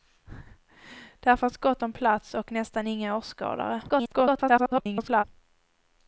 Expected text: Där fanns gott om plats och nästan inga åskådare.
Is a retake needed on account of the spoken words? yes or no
yes